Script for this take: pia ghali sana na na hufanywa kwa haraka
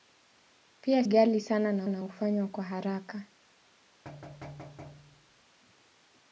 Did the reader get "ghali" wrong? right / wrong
right